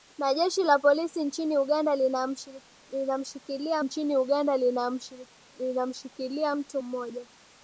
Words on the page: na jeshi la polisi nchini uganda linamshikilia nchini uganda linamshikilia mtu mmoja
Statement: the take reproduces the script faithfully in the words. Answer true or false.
true